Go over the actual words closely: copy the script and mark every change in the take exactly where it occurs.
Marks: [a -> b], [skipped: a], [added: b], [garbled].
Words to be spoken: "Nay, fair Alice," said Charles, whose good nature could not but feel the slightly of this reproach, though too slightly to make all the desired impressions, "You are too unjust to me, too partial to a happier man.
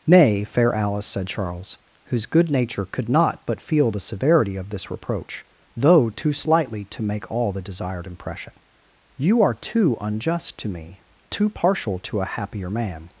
"Nay, fair Alice," said Charles, whose good nature could not but feel the [slightly -> severity] of this reproach, though too slightly to make all the desired [impressions, -> impression] "You are too unjust to me, too partial to a happier man.